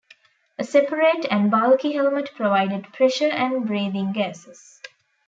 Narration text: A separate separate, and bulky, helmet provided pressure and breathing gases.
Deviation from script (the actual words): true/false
true